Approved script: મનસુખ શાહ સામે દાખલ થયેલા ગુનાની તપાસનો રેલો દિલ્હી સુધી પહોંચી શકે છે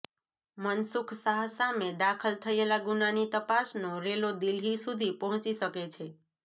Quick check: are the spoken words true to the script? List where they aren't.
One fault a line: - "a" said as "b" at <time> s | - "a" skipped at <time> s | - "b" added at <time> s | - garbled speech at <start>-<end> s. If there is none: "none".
none